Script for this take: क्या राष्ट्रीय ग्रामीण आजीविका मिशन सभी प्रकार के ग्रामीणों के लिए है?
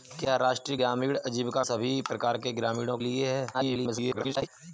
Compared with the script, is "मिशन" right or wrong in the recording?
wrong